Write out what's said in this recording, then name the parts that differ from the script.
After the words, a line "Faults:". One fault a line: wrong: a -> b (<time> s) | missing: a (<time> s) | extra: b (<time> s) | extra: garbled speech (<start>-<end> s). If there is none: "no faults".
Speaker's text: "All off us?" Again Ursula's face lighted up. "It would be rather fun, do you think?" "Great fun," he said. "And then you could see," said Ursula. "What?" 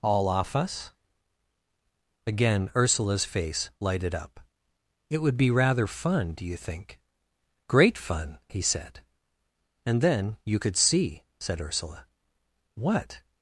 "All off us?" Again Ursula's face lighted up. "It would be rather fun, do you think?" "Great fun," he said. "And then you could see," said Ursula. "What?"
Faults:
no faults